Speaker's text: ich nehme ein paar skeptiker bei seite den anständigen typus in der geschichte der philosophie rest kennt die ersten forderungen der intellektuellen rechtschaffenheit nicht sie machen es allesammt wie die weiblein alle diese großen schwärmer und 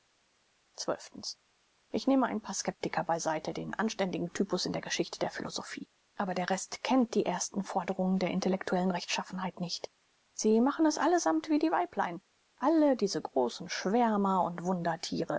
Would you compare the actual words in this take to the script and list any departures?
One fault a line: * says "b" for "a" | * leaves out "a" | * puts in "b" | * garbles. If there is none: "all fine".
* puts in "aber der"